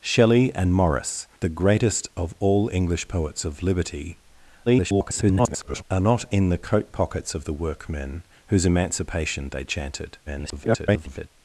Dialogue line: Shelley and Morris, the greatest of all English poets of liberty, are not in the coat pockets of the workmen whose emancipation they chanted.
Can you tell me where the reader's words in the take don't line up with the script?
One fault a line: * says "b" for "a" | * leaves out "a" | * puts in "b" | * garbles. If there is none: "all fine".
* garbles
* garbles